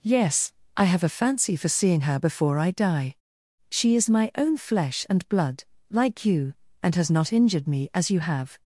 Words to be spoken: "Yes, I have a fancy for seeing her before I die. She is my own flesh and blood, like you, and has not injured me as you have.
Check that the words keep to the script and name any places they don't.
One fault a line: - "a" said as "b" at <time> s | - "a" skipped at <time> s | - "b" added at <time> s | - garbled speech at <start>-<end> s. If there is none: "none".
none